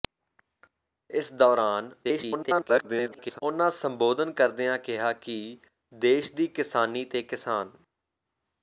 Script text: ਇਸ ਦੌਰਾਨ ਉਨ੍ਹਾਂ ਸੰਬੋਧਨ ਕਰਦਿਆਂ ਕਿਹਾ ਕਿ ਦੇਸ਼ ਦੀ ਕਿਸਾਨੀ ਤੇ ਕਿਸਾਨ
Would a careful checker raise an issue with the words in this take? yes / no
yes